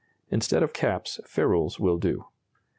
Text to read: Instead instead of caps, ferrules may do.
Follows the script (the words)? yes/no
no